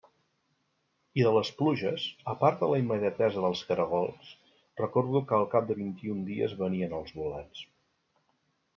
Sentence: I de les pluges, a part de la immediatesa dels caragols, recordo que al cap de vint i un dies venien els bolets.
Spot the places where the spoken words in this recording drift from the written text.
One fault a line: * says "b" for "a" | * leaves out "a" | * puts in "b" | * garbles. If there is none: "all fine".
all fine